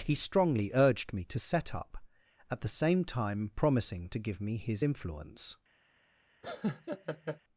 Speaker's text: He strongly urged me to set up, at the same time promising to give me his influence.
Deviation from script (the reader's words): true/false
false